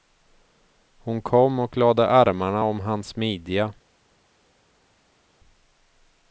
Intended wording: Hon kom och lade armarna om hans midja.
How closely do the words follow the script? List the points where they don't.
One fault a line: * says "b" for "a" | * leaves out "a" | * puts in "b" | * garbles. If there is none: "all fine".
all fine